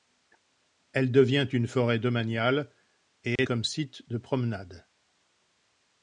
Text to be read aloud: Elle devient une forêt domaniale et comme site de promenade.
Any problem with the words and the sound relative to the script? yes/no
yes